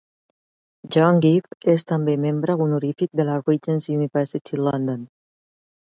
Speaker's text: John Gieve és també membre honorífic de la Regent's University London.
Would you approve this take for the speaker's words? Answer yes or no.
yes